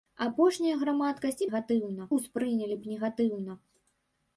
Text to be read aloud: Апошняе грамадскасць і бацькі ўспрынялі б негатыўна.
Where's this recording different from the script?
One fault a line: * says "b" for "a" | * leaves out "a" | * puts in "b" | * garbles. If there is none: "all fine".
* says "негатыўна" for "бацькі"